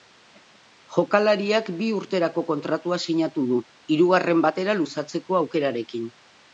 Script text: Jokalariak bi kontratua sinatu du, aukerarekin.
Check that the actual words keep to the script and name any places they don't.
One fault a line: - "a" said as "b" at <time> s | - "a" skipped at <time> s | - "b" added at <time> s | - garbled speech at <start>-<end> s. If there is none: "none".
- "urterako" added at 2.0 s
- "hirugarren batera luzatzeko" added at 4.0 s